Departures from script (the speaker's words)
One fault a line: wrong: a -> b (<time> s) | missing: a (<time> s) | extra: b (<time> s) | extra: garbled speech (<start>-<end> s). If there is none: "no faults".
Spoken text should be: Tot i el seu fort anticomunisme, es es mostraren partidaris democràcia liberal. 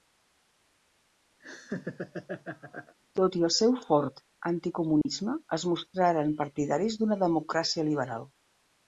missing: es (5.7 s)
extra: d'una (7.0 s)